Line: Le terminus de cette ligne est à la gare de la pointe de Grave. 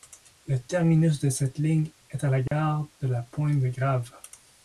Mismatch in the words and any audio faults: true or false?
true